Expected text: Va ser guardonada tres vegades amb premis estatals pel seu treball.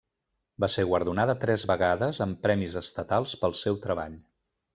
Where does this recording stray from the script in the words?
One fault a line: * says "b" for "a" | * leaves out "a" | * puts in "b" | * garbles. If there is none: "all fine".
all fine